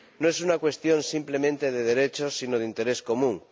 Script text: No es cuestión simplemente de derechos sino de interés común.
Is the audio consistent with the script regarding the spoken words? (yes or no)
no